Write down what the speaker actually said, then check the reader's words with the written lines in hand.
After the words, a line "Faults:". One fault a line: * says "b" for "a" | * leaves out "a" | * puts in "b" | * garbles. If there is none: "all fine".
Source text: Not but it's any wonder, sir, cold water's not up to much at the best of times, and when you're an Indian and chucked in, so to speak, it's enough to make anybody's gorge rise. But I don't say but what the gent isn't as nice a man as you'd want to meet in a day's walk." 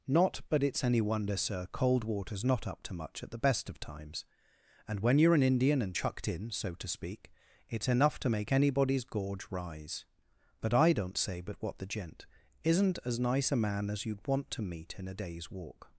Not but it's any wonder, sir, cold water's not up to much at the best of times, and when you're an Indian and chucked in, so to speak, it's enough to make anybody's gorge rise. But I don't say but what the gent isn't as nice a man as you'd want to meet in a day's walk."
Faults:
all fine